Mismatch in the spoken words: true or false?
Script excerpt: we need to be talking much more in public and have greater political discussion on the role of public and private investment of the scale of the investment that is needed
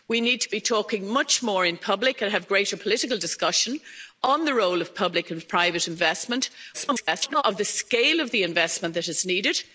true